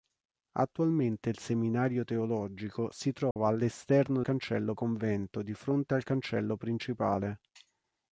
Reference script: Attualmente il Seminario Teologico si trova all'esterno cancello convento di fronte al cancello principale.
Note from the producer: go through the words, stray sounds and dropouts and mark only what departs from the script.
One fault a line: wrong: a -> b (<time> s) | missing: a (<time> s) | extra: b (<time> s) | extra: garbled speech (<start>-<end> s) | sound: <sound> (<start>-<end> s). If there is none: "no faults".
sound: dropout (3.3-3.4 s)